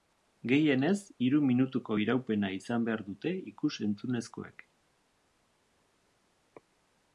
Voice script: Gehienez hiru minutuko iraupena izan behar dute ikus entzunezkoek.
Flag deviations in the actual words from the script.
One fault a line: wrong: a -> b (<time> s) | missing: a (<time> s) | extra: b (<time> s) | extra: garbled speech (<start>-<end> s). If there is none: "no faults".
no faults